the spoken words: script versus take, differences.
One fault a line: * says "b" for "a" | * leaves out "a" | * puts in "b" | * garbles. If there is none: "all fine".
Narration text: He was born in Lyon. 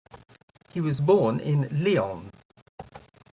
all fine